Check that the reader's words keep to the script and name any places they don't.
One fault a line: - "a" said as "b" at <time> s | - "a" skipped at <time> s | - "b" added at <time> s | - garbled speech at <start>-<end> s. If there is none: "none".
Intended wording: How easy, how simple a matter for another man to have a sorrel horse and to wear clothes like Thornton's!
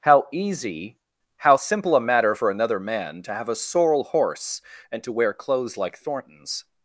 none